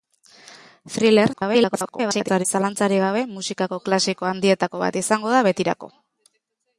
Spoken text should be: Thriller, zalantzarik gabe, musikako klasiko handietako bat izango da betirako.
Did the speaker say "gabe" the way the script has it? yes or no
yes